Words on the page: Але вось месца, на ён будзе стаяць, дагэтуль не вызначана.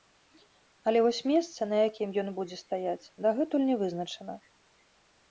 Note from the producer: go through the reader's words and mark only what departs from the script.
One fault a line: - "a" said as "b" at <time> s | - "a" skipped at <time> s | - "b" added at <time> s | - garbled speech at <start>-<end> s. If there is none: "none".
- "якім" added at 1.9 s